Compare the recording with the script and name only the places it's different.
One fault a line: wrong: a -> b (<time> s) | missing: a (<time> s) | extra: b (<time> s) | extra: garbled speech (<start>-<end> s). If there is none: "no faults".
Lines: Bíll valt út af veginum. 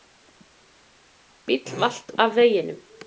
missing: út (2.1 s)